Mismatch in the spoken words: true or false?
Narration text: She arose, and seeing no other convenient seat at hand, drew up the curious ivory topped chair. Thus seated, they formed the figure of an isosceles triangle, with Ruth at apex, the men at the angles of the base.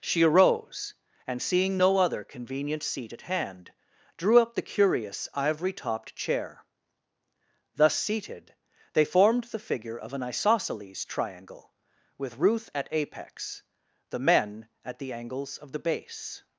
false